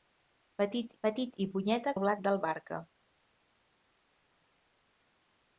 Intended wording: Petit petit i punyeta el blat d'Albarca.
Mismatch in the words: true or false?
false